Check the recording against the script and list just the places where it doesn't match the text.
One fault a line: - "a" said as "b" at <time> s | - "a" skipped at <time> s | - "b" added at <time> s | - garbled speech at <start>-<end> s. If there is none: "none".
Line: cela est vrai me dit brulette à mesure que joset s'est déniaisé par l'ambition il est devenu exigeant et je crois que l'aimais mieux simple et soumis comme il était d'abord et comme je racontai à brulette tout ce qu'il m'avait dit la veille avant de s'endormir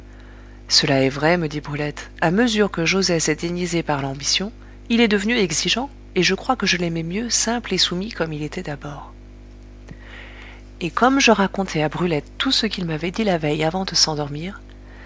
- "je" added at 6.7 s